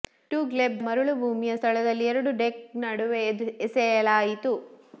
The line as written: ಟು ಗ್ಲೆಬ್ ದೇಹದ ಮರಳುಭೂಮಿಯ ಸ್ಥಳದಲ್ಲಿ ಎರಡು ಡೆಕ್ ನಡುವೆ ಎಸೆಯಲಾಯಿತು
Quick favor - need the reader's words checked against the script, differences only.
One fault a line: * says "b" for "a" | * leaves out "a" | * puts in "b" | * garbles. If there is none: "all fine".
* leaves out "ದೇಹದ"